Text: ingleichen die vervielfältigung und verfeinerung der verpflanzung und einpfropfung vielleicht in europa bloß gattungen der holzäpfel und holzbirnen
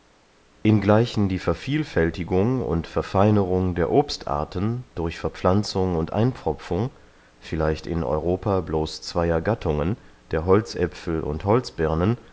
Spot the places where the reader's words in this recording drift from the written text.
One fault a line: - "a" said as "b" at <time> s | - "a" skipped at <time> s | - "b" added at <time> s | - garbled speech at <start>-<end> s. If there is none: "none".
- "obstarten durch" added at 3.9 s
- "zweyer" added at 9.0 s